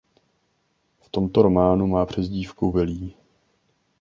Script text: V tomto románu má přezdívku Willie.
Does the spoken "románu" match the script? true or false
true